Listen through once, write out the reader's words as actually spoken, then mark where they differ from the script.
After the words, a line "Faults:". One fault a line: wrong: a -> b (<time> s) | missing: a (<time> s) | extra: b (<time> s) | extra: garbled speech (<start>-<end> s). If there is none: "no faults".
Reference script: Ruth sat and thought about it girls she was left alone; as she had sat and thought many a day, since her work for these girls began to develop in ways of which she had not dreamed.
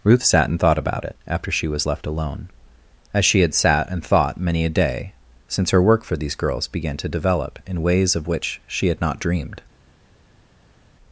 Ruth sat and thought about it after she was left alone; as she had sat and thought many a day, since her work for these girls began to develop in ways of which she had not dreamed.
Faults:
wrong: girls -> after (1.3 s)